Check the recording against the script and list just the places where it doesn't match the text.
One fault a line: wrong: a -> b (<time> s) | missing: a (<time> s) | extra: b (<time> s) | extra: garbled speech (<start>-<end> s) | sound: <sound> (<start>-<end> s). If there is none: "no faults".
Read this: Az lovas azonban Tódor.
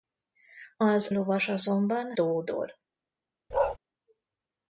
sound: bark (3.5-3.8 s)